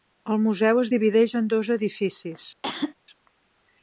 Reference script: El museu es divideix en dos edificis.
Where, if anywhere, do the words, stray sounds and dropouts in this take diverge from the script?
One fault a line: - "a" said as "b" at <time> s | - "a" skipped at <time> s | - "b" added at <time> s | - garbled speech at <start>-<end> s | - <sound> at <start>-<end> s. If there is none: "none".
- cough at 2.6-2.9 s